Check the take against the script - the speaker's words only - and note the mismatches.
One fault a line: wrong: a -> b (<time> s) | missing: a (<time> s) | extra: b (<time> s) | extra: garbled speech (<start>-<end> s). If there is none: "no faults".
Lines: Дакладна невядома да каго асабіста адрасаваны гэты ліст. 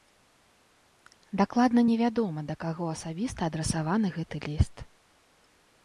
no faults